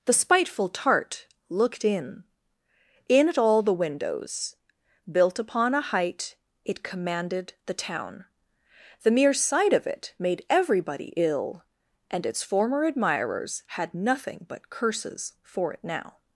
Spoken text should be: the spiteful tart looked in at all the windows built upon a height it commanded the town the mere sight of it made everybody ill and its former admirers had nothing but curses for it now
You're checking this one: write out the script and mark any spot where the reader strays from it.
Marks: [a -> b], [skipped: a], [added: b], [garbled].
the spiteful tart looked in [added: in] at all the windows built upon a height it commanded the town the mere sight of it made everybody ill and its former admirers had nothing but curses for it now